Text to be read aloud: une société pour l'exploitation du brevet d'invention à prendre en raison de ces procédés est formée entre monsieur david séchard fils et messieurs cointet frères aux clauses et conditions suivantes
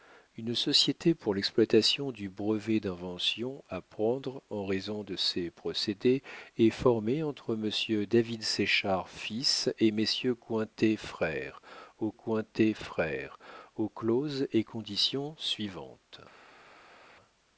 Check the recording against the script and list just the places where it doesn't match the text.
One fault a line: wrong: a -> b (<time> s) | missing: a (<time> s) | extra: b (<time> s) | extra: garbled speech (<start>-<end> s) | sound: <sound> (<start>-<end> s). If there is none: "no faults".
extra: cointet frères aux (12.1 s)